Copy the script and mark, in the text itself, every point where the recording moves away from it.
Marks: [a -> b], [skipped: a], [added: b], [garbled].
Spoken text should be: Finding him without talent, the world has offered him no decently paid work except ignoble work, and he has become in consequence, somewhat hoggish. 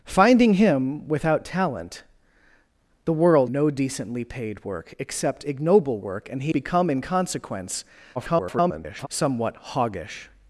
Finding him without talent, the world [skipped: has offered him] no decently paid work except ignoble work, and he [skipped: has] become in consequence, [garbled] somewhat hoggish.